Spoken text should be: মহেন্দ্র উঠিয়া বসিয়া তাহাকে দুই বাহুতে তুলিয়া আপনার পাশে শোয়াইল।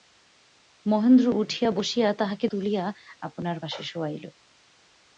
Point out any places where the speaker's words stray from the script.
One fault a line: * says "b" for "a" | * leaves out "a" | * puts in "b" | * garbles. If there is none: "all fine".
* leaves out "দুই বাহুতে"